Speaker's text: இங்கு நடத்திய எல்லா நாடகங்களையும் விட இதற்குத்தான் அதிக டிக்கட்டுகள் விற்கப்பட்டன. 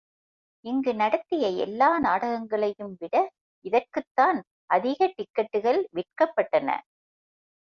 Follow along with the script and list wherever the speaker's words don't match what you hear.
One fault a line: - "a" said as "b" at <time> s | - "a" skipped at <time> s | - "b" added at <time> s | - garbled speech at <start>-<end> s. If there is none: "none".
none